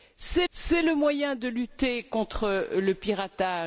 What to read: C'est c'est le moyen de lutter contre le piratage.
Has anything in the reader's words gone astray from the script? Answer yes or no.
no